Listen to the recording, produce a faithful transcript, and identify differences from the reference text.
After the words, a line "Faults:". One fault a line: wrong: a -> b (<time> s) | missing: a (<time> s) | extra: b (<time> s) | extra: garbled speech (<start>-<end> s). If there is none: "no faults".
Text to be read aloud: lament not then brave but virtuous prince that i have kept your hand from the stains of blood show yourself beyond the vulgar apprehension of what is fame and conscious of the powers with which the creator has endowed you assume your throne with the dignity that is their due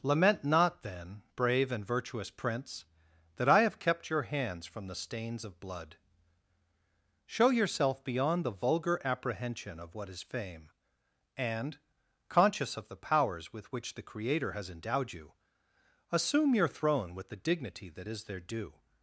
lament not then brave and virtuous prince that i have kept your hands from the stains of blood show yourself beyond the vulgar apprehension of what is fame and conscious of the powers with which the creator has endowed you assume your throne with the dignity that is their due
Faults:
wrong: but -> and (1.7 s)
wrong: hand -> hands (4.2 s)